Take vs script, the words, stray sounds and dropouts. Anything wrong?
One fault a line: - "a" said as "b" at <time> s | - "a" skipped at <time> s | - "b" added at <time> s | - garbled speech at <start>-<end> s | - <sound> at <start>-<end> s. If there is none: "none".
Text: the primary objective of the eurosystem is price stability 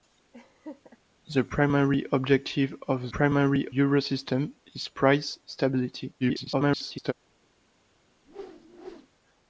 - laugh at 0.3-1.0 s
- "the" said as "primary" at 3.1 s
- garbled speech at 6.2-7.1 s
- whoosh at 8.2-9.1 s